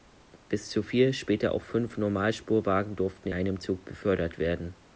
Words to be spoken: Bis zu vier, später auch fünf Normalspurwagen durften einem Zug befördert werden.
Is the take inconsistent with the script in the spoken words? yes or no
no